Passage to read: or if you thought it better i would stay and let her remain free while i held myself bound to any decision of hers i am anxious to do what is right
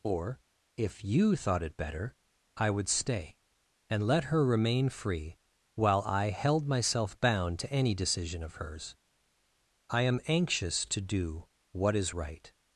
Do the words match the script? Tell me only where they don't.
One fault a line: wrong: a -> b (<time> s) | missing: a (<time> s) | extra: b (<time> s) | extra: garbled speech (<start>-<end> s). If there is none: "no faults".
no faults